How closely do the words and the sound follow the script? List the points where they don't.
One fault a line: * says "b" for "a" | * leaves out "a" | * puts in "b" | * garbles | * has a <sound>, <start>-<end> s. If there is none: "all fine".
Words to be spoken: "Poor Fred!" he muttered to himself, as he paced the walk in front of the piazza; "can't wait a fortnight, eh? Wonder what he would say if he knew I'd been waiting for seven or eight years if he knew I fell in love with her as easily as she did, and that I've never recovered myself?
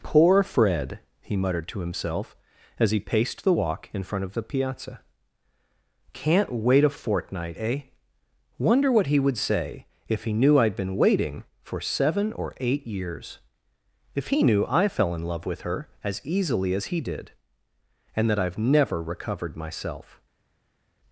* says "he" for "she"